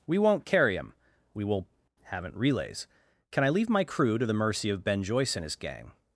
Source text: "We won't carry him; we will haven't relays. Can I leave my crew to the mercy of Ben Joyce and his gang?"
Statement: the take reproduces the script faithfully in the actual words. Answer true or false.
true